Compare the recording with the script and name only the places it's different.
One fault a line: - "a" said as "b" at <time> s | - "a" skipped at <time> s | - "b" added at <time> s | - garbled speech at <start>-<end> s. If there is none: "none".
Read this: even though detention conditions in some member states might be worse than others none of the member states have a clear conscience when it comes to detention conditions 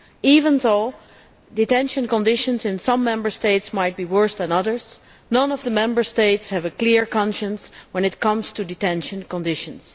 none